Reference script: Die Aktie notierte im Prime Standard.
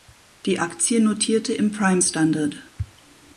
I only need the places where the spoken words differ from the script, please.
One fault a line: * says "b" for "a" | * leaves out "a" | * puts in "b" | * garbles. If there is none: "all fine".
all fine